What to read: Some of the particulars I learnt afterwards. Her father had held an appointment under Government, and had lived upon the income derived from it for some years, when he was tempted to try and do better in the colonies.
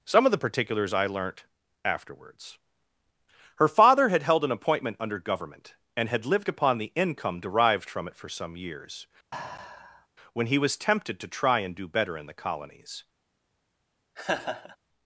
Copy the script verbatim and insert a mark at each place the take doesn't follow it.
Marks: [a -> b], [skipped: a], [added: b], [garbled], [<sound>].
Some of the particulars I learnt afterwards. Her father had held an appointment under Government, and had lived upon the income derived from it for some years, [sigh] when he was tempted to try and do better in the colonies. [laugh]